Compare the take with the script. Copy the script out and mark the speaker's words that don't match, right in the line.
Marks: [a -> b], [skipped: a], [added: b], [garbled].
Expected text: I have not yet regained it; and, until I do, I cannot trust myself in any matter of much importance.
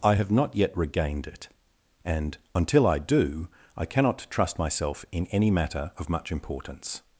I have not yet regained it; and, until I do, I cannot trust myself in any matter of much importance.